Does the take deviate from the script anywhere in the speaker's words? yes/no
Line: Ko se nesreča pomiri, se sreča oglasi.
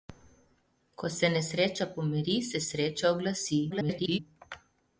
yes